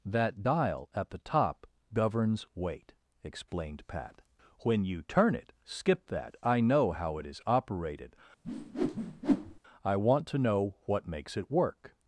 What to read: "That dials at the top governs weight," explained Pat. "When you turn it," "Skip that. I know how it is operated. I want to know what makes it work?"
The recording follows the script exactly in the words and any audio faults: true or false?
false